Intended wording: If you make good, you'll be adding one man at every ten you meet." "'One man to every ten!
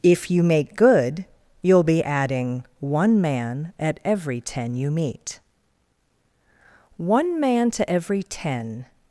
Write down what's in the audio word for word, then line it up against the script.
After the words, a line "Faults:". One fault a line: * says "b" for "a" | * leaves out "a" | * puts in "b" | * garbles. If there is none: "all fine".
If you make good, you'll be adding one man at every ten you meet." "'One man to every ten!
Faults:
all fine